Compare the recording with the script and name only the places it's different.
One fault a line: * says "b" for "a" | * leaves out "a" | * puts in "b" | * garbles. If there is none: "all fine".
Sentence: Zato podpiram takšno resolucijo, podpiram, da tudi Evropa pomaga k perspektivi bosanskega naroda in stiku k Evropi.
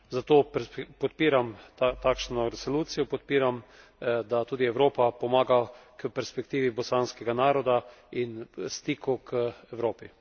all fine